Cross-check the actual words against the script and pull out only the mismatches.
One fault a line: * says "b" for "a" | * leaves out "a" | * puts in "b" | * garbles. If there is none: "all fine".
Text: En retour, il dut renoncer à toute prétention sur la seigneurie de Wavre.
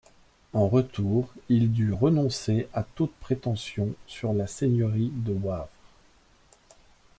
all fine